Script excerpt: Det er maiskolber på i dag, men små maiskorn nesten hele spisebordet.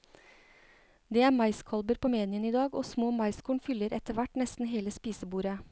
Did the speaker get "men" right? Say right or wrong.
wrong